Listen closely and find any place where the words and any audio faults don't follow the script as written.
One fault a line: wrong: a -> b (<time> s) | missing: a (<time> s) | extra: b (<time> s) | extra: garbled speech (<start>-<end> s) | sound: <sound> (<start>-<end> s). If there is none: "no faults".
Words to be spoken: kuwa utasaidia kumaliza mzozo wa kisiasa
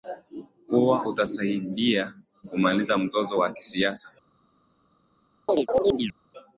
sound: chirp (5.5-6.1 s)